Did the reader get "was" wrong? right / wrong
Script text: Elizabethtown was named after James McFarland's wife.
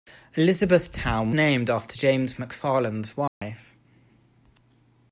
wrong